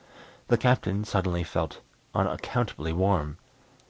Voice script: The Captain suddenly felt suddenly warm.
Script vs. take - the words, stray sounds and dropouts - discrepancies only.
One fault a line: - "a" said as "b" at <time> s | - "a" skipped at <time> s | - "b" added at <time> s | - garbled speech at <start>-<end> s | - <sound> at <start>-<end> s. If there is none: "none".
- "suddenly" said as "unaccountably" at 2.1 s